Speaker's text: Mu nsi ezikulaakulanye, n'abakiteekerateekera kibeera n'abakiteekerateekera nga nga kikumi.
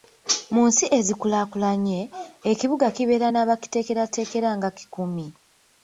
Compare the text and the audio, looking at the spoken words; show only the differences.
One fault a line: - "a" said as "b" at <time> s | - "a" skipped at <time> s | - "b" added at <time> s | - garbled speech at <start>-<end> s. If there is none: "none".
- "n'abakiteekerateekera" said as "ekibuga" at 2.5 s
- "nga" skipped at 4.7 s